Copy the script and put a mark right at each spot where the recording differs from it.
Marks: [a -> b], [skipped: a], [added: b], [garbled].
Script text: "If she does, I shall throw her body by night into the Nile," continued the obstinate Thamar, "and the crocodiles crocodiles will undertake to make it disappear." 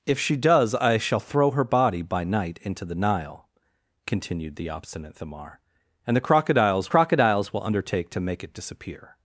"If she does, I shall throw her body by night into the Nile," continued the obstinate Thamar, "and the crocodiles crocodiles will undertake to make it disappear."